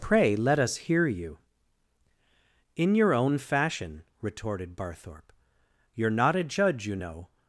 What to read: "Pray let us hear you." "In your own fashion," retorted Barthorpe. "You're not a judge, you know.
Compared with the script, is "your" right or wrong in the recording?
right